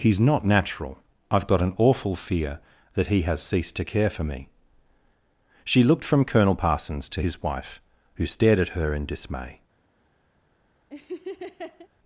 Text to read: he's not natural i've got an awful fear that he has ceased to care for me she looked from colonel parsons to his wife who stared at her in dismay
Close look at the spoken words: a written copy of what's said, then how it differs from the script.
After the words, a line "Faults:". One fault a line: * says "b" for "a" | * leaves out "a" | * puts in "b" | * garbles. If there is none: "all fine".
he's not natural i've got an awful fear that he has ceased to care for me she looked from colonel parsons to his wife who stared at her in dismay
Faults:
all fine